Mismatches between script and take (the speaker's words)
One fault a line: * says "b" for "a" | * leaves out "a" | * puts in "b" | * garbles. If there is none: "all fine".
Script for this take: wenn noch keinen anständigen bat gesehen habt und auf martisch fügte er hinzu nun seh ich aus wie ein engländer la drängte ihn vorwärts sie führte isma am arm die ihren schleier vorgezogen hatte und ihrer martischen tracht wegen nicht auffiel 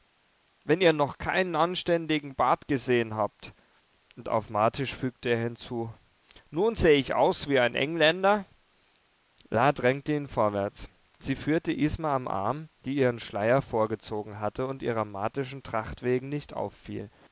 * puts in "ihr"